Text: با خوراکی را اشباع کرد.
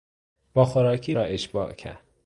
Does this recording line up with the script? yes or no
yes